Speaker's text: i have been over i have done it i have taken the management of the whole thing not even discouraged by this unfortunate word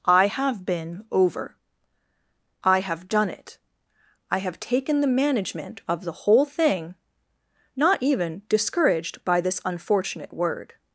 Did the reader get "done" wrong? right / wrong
right